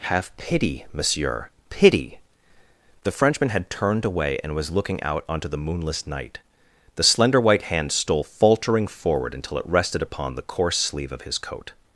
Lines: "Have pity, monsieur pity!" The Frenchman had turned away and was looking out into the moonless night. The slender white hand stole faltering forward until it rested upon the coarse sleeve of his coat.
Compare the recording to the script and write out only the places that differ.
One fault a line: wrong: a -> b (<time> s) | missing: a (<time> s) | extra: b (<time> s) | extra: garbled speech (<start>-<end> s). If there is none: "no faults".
wrong: into -> onto (5.3 s)